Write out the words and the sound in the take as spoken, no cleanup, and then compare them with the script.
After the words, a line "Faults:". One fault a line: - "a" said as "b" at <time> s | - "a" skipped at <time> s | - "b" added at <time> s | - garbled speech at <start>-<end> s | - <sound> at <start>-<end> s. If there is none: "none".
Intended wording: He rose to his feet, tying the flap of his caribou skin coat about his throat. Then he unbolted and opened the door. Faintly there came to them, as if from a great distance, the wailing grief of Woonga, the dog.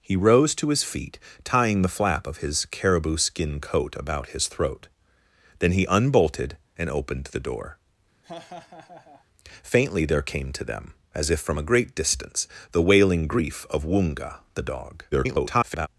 He rose to his feet, tying the flap of his caribou skin coat about his throat. Then he unbolted and opened the door. Faintly there came to them, as if from a great distance, the wailing grief of Woonga, the dog. [garbled]
Faults:
- laugh at 8.2-9.3 s
- garbled speech at 15.1-15.9 s